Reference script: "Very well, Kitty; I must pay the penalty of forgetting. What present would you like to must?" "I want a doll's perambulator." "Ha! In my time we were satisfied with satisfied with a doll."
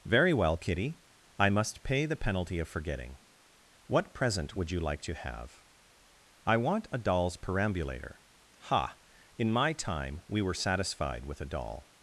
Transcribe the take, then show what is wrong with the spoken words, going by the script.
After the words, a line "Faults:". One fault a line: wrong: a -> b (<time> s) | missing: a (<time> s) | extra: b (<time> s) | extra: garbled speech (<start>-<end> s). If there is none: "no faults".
"Very well, Kitty; I must pay the penalty of forgetting. What present would you like to have?" "I want a doll's perambulator." "Ha! In my time we were satisfied with a doll."
Faults:
wrong: must -> have (5.1 s)
missing: satisfied with (11.4 s)